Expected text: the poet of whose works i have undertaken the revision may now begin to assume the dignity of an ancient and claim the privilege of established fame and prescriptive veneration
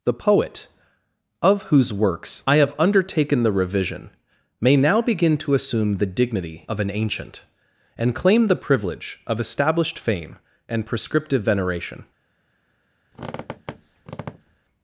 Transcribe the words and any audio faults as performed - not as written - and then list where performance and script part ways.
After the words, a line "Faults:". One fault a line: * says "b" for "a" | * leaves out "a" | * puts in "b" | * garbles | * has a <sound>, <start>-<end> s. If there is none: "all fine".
the poet of whose works i have undertaken the revision may now begin to assume the dignity of an ancient and claim the privilege of established fame and prescriptive veneration
Faults:
* has a squeak, 13.1-14.6 s